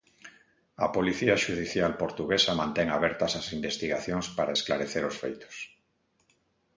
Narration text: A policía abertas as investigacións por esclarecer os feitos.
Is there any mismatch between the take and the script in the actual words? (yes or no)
yes